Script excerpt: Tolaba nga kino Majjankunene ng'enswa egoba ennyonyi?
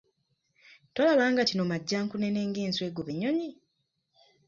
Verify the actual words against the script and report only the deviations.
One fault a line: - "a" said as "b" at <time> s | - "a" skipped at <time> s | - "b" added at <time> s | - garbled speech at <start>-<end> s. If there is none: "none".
none